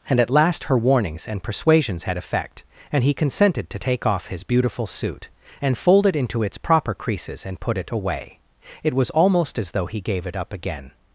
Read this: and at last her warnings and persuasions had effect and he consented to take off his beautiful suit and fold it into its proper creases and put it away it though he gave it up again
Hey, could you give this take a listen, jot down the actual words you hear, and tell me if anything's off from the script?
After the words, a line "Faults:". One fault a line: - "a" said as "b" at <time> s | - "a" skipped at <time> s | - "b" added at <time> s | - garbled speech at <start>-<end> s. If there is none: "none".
and at last her warnings and persuasions had effect and he consented to take off his beautiful suit and fold it into its proper creases and put it away it was almost as though he gave it up again
Faults:
- "was almost as" added at 8.9 s